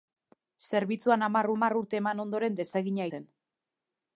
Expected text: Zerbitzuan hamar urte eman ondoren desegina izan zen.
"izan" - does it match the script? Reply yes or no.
no